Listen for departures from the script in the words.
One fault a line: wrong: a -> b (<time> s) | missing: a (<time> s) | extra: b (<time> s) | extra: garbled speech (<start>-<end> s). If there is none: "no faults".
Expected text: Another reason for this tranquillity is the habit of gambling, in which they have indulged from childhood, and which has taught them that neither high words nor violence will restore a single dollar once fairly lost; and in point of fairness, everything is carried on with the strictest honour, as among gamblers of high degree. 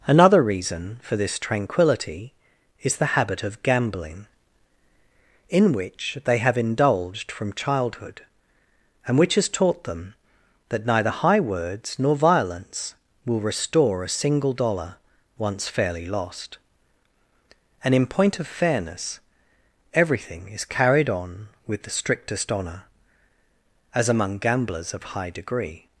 no faults